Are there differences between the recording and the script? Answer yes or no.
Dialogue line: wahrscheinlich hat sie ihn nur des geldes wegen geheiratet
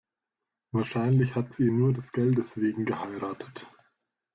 no